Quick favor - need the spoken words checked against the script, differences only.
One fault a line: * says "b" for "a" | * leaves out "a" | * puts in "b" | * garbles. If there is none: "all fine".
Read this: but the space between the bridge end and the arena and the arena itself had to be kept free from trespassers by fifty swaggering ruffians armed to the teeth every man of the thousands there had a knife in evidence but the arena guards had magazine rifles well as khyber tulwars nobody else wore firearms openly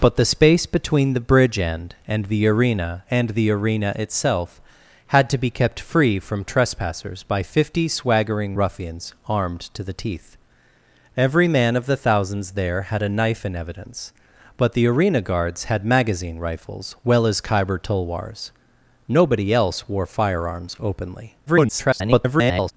* garbles